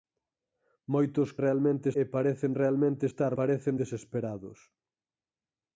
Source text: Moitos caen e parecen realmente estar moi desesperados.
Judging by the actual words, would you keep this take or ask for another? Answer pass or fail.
fail